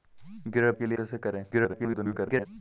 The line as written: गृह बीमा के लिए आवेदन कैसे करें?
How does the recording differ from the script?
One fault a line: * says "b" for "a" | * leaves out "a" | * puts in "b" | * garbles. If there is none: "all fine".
* leaves out "बीमा"
* leaves out "आवेदन"
* garbles